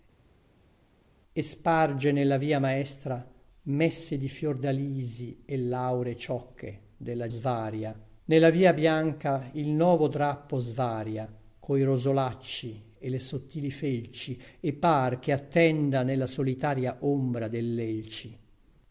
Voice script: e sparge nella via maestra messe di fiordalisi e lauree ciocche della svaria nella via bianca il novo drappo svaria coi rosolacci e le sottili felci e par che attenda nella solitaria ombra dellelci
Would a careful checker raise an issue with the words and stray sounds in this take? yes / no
no